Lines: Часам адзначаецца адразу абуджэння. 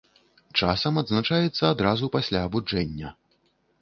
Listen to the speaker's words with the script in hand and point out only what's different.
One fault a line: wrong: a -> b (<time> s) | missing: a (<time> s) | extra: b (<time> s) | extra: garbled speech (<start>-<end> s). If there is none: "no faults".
extra: пасля (2.2 s)